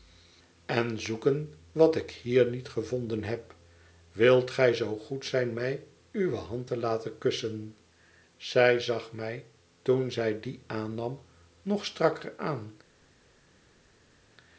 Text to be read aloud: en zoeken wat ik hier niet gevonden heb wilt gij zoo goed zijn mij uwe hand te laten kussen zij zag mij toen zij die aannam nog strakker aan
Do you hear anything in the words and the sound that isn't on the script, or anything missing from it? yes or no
no